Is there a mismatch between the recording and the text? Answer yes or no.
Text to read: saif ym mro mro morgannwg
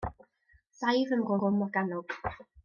no